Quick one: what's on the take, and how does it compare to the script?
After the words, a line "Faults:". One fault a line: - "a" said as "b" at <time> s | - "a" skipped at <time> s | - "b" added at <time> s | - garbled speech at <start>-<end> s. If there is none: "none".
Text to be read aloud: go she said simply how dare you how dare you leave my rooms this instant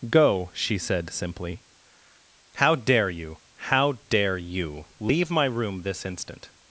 go she said simply how dare you how dare you leave my room this instant
Faults:
- "rooms" said as "room" at 5.5 s